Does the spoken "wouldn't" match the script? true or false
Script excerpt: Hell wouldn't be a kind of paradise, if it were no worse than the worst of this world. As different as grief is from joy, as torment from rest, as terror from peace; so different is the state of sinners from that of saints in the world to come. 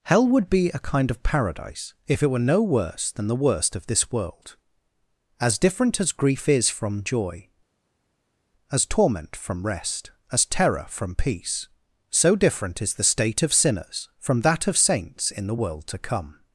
false